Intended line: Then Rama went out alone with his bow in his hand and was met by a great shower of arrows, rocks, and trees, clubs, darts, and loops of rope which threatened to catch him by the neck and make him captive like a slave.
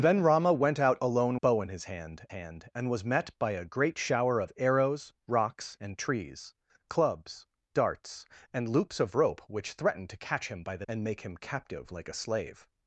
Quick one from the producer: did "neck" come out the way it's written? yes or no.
no